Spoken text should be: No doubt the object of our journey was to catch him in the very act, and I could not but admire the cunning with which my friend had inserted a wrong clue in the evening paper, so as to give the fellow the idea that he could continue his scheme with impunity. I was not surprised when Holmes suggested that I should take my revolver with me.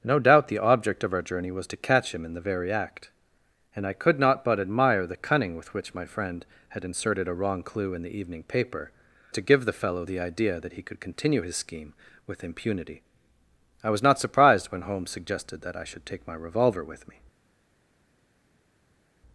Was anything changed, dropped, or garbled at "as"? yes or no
yes